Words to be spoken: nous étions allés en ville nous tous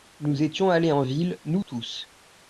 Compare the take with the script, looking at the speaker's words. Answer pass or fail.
pass